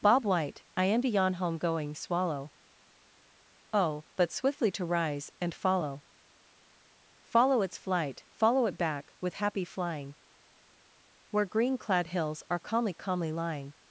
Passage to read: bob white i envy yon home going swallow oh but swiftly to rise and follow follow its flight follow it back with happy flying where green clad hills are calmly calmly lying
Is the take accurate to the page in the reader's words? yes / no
yes